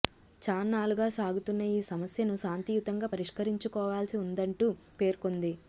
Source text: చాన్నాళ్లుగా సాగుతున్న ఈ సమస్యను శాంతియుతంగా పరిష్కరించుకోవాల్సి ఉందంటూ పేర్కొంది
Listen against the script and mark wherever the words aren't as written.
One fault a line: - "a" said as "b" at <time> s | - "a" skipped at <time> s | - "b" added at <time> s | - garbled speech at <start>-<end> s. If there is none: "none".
none